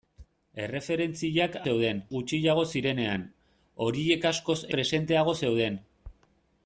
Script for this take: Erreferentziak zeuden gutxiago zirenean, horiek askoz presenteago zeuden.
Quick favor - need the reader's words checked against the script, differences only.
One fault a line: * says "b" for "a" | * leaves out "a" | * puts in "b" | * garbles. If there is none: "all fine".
all fine